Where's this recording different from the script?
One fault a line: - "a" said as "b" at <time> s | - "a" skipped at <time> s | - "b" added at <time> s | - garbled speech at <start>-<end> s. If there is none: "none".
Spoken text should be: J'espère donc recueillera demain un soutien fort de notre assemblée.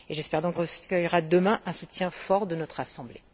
none